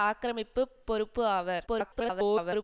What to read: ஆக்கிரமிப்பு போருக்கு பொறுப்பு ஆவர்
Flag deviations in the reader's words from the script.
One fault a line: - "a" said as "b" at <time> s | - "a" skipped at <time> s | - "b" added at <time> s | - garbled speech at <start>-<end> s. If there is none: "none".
- "போருக்கு" skipped at 0.6 s
- garbled speech at 1.7-2.6 s